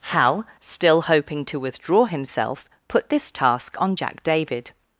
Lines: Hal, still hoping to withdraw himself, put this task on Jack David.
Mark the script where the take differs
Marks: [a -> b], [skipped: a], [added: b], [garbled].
Hal, still hoping to withdraw himself, put this task on Jack David.